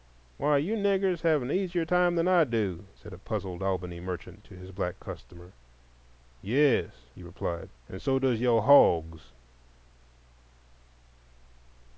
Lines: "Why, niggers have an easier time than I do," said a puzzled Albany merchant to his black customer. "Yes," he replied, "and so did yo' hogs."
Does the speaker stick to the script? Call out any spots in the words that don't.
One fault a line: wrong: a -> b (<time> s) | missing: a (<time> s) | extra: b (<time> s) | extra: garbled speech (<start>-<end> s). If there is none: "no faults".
extra: you (0.6 s)
wrong: did -> does (8.2 s)